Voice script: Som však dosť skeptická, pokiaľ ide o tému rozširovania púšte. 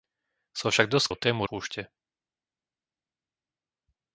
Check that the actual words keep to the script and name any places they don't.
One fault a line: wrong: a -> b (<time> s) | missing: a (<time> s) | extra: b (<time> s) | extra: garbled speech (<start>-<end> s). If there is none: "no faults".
missing: skeptická pokiaľ ide (1.1 s)
missing: rozširovania (1.5 s)